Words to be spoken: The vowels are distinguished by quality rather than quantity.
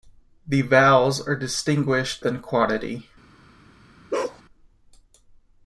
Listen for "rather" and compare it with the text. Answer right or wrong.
wrong